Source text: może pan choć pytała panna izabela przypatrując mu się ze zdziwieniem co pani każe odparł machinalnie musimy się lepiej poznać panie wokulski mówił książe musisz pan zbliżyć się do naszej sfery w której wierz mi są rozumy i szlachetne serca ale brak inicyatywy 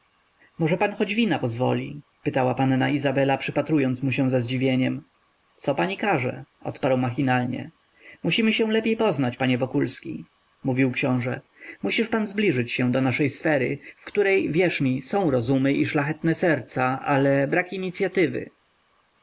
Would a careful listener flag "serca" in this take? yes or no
no